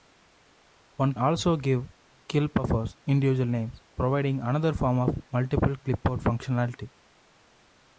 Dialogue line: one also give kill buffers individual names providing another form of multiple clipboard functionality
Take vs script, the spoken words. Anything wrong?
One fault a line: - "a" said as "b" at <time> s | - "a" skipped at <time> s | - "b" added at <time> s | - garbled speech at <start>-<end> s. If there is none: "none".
none